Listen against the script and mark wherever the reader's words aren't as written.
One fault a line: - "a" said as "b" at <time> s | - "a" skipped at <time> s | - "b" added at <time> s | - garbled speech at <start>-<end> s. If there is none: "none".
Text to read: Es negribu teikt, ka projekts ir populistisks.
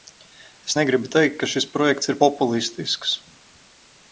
- "šis" added at 1.5 s